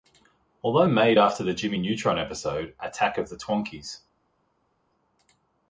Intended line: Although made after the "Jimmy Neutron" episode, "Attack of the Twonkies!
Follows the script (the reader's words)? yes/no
yes